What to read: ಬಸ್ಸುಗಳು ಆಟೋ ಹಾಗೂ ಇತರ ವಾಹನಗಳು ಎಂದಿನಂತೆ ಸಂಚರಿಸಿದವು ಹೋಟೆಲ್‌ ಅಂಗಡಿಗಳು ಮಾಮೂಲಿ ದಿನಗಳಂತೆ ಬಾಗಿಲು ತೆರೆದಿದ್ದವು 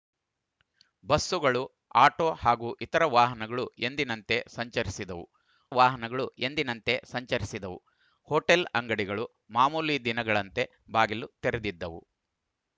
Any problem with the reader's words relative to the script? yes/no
yes